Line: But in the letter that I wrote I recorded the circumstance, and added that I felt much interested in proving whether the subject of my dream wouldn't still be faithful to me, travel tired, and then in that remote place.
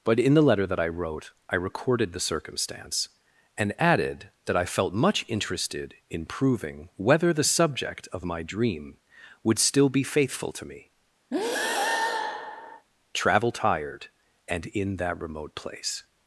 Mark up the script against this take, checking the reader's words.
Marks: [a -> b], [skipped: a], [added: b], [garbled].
But in the letter that I wrote I recorded the circumstance, and added that I felt much interested in proving whether the subject of my dream [wouldn't -> would] still be faithful to me, travel tired, and [skipped: then] in that remote place.